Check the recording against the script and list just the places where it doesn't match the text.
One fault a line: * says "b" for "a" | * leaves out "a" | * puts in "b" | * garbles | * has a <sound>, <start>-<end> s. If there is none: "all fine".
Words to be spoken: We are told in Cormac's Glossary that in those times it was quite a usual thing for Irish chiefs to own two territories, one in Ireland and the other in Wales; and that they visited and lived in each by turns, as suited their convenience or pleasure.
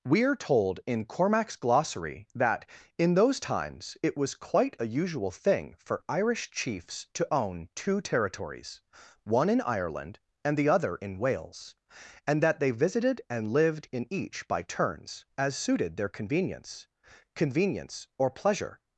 * puts in "convenience"